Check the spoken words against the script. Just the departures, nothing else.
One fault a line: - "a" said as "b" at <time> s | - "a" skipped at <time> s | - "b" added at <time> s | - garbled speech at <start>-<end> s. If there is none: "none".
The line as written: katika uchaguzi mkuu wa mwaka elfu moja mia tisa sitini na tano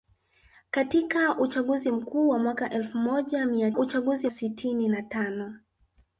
- "tisa" said as "uchaguzi" at 3.8 s